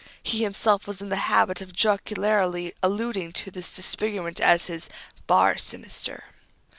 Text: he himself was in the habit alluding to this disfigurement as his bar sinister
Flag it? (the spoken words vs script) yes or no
yes